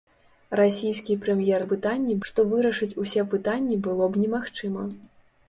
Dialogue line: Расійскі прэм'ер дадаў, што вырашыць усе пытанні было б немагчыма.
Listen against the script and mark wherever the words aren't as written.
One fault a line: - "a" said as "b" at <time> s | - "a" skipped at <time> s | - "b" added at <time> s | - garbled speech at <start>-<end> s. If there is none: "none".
- "дадаў" said as "пытанні" at 1.7 s